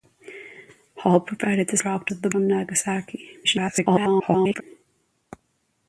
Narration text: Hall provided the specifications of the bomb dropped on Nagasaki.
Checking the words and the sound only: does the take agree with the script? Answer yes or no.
no